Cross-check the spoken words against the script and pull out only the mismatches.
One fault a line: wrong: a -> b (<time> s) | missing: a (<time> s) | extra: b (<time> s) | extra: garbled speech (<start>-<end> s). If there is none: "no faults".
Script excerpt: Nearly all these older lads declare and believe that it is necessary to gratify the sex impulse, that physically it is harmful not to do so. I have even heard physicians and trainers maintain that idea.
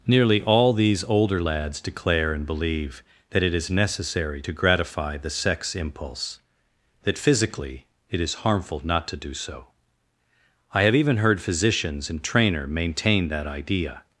wrong: trainers -> trainer (12.2 s)